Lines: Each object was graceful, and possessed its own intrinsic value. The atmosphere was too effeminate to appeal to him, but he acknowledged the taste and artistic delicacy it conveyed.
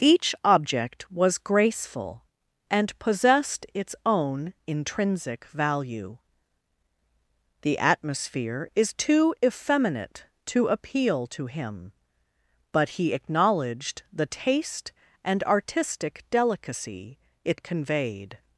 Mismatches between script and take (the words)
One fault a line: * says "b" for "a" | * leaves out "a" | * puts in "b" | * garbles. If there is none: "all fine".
* says "is" for "was"